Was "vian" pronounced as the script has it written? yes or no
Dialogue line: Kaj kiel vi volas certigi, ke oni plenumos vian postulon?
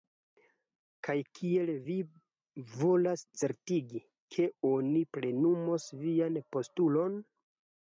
yes